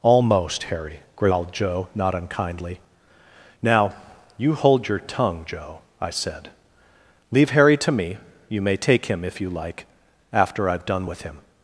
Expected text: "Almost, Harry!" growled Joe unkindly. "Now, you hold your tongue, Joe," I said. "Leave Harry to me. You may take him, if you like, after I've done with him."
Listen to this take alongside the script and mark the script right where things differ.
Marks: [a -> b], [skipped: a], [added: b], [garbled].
"Almost, Harry!" growled Joe [added: not] unkindly. "Now, you hold your tongue, Joe," I said. "Leave Harry to me. You may take him, if you like, after I've done with him."